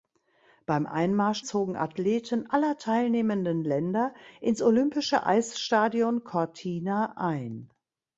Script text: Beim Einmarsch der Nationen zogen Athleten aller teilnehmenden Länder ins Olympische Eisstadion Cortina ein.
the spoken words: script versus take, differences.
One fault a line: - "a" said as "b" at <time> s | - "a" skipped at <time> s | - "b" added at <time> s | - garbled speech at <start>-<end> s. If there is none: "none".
- "der Nationen" skipped at 1.4 s